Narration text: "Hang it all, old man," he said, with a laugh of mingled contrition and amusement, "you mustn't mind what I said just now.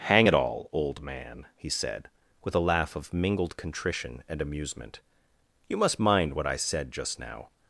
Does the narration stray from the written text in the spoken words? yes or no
yes